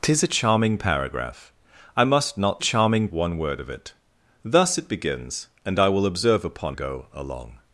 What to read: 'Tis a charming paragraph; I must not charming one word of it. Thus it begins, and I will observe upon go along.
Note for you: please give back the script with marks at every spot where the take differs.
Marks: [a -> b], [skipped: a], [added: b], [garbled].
'Tis a charming paragraph; I must not charming one word of it. Thus it begins, and I will observe upon go along.